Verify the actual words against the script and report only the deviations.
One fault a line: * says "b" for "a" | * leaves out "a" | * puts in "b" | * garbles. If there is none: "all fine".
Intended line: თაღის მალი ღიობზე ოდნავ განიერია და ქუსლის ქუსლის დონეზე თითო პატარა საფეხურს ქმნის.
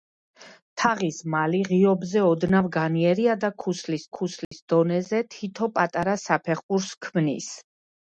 all fine